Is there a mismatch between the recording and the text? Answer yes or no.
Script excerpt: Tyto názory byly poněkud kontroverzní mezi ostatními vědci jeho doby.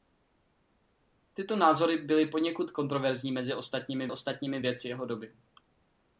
yes